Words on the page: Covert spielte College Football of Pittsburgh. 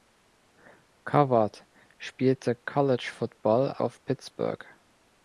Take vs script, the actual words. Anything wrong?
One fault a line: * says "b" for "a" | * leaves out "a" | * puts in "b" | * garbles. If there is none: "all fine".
all fine